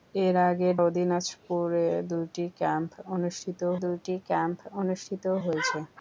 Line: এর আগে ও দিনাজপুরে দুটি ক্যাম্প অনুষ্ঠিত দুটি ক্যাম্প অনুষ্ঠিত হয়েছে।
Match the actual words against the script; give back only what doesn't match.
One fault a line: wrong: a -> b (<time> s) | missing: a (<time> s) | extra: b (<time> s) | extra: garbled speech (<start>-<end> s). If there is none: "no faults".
no faults